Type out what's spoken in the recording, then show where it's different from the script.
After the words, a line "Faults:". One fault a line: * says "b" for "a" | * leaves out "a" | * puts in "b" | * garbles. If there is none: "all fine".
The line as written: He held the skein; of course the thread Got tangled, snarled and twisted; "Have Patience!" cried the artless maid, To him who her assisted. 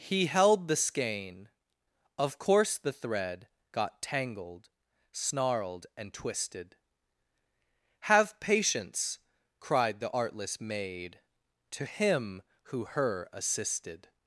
He held the skein; of course the thread Got tangled, snarled and twisted; "Have Patience!" cried the artless maid, To him who her assisted.
Faults:
all fine